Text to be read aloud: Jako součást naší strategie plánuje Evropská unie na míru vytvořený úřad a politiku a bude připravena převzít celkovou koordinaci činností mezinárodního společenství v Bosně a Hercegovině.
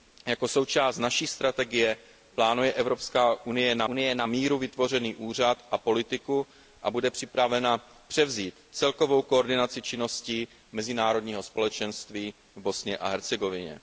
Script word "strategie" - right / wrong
right